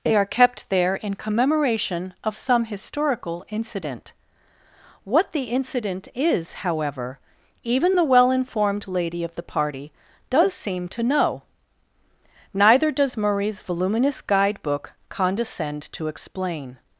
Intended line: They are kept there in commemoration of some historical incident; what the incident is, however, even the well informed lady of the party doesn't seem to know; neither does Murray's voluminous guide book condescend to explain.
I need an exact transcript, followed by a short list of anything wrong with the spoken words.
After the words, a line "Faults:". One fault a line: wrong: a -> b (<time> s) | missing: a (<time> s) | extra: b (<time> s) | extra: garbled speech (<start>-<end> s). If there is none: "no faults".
They are kept there in commemoration of some historical incident; what the incident is, however, even the well informed lady of the party does seem to know; neither does Murray's voluminous guide book condescend to explain.
Faults:
wrong: doesn't -> does (10.3 s)